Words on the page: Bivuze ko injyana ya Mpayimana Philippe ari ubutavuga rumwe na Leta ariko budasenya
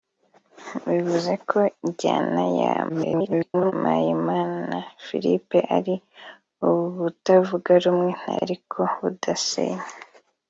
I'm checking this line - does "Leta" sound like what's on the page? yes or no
no